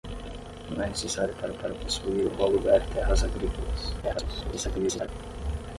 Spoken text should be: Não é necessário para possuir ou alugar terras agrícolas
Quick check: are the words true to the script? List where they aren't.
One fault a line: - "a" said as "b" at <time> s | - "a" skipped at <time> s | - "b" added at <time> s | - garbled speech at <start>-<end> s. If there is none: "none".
- "para" added at 1.5 s
- garbled speech at 4.0-5.1 s